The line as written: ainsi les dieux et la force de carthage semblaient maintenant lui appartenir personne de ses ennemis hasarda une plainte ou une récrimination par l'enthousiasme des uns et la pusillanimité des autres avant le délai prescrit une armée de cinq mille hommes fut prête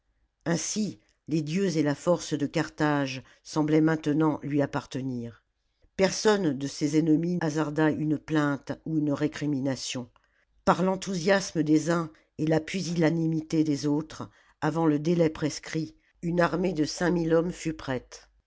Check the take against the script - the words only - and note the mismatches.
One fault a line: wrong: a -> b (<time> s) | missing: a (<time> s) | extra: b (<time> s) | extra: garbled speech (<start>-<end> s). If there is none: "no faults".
no faults